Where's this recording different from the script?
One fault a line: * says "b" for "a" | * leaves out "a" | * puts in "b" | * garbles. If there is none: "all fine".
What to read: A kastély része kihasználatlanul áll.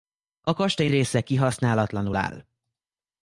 all fine